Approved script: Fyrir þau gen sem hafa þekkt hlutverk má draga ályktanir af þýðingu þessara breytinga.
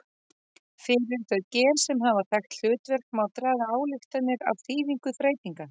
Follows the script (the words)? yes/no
no